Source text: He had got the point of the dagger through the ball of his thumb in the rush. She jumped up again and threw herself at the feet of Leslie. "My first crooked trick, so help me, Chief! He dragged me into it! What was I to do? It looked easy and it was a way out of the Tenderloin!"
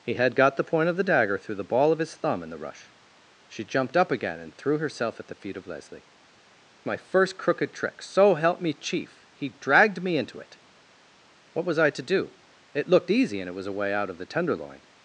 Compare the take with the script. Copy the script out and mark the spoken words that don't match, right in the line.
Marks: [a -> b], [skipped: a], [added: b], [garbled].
He had got the point of the dagger through the ball of his thumb in the rush. She jumped up again and threw herself at the feet of Leslie. "My first crooked trick, so help me, Chief! He dragged me into it! What was I to do? It looked easy and it was a way out of the Tenderloin!"